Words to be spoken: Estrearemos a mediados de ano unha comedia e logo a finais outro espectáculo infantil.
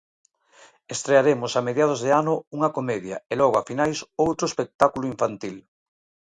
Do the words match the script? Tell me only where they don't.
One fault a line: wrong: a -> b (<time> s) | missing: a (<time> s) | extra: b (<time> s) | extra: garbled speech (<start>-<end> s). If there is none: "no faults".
no faults